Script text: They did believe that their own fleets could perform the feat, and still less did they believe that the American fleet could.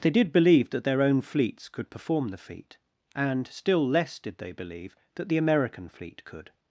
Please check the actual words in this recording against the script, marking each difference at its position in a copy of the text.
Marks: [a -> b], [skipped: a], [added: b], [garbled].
They did believe that their own fleets could perform the feat, and still less did they believe that the American fleet could.